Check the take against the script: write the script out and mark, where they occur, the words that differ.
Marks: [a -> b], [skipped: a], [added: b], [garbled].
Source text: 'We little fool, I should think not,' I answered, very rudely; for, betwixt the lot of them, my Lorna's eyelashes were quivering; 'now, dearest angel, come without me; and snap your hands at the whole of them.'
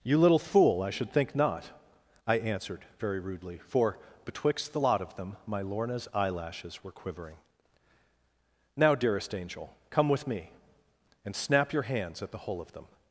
['We -> You] little fool, I should think not,' I answered, very rudely; for, betwixt the lot of them, my Lorna's eyelashes were quivering; 'now, dearest angel, come [without -> with] me; and snap your hands at the whole of them.'